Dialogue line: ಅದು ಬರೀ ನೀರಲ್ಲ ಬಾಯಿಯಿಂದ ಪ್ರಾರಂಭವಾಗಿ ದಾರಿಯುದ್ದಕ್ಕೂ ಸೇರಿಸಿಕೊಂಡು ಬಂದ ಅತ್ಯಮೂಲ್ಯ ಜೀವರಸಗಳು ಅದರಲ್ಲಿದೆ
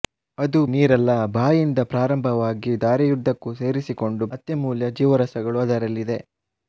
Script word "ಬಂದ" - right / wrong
wrong